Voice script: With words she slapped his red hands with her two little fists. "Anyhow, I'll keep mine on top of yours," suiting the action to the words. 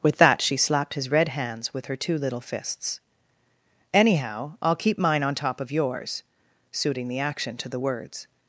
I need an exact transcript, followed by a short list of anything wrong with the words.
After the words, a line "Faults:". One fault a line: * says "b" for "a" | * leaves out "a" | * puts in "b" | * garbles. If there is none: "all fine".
With that she slapped his red hands with her two little fists. "Anyhow, I'll keep mine on top of yours," suiting the action to the words.
Faults:
* says "that" for "words"